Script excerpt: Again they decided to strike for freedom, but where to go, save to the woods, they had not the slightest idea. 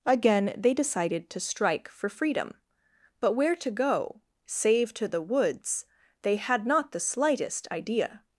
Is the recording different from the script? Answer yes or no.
no